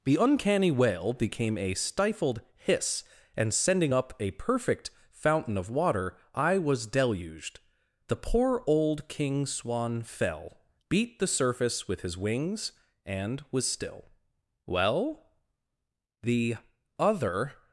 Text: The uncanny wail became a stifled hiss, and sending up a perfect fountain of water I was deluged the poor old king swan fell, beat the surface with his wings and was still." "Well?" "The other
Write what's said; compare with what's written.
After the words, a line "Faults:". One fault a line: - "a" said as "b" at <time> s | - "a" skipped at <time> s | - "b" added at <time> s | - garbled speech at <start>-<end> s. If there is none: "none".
The uncanny wail became a stifled hiss, and sending up a perfect fountain of water I was deluged the poor old king swan fell, beat the surface with his wings and was still." "Well?" "The other
Faults:
none